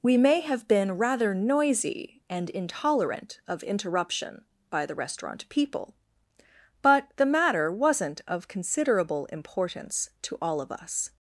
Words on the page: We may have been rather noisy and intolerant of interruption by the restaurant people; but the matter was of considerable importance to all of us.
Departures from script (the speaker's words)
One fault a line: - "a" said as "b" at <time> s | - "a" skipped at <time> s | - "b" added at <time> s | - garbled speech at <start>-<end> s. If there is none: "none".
- "was" said as "wasn't" at 7.7 s